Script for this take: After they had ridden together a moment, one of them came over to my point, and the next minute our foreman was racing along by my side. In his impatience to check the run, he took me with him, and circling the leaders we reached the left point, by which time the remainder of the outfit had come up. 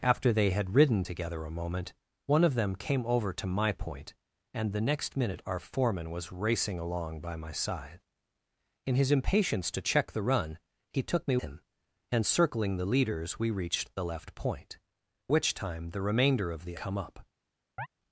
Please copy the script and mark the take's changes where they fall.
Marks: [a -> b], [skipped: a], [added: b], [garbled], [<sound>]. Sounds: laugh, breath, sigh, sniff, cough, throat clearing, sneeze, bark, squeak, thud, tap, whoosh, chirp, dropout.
After they had ridden together a moment, one of them came over to my point, and the next minute our foreman was racing along by my side. In his impatience to check the run, he took me [skipped: with] him, and circling the leaders we reached the left point, [skipped: by] which time the remainder of the [skipped: outfit had] come up. [chirp]